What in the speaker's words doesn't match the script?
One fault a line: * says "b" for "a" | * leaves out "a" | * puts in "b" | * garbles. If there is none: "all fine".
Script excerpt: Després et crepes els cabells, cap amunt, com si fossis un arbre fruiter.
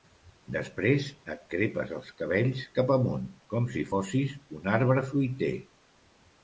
all fine